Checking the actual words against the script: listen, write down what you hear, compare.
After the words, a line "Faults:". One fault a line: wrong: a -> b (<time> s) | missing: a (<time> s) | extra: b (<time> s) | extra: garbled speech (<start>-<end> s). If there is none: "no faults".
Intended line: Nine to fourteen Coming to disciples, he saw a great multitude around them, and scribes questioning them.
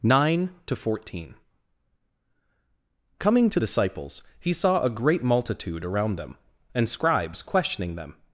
Nine to fourteen Coming to disciples, he saw a great multitude around them, and scribes questioning them.
Faults:
no faults